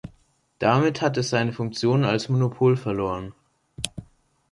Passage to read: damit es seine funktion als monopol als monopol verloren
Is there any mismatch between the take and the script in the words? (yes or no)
yes